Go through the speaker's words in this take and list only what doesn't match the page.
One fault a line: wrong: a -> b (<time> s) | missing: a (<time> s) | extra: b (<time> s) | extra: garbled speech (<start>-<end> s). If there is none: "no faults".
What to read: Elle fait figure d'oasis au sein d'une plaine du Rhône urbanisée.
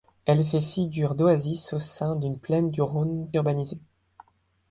no faults